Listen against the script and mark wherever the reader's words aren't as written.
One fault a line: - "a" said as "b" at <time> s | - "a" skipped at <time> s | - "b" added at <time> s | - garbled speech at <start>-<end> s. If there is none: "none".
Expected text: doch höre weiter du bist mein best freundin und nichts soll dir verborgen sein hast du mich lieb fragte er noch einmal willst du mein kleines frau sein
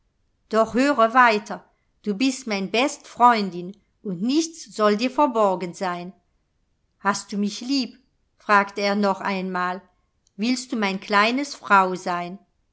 none